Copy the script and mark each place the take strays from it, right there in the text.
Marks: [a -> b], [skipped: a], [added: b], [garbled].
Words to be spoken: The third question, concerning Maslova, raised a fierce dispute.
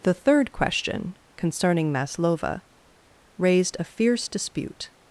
The third question, concerning Maslova, raised a fierce dispute.